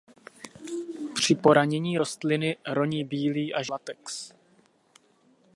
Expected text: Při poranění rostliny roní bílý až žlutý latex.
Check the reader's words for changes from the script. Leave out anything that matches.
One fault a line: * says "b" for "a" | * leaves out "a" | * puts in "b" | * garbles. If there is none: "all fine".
* leaves out "žlutý"